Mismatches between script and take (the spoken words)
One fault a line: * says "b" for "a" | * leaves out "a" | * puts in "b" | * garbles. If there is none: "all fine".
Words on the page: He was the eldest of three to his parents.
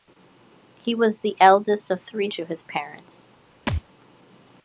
all fine